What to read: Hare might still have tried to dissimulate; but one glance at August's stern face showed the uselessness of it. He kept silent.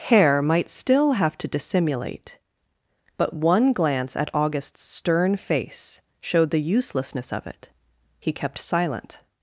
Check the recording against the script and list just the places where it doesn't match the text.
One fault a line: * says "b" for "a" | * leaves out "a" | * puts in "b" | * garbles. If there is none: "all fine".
* leaves out "tried"